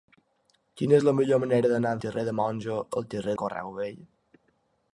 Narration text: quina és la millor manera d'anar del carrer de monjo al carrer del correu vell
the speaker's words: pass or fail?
fail